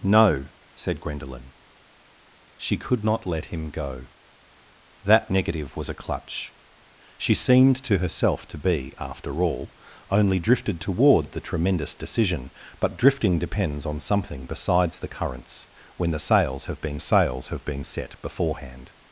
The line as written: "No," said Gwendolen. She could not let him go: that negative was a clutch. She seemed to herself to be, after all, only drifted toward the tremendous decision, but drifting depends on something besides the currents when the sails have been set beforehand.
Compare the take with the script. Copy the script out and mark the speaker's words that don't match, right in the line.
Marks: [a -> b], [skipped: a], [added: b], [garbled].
"No," said Gwendolen. She could not let him go: that negative was a clutch. She seemed to herself to be, after all, only drifted toward the tremendous decision, but drifting depends on something besides the currents when the sails have been [added: sails have been] set beforehand.